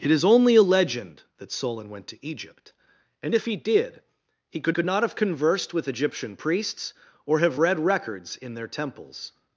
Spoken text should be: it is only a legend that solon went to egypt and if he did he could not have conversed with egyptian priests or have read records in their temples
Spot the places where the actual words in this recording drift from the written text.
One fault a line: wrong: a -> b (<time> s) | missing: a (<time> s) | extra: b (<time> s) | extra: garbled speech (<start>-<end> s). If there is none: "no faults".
extra: could (4.7 s)